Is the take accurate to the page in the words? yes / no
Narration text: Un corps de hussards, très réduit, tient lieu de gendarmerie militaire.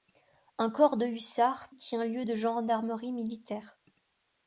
no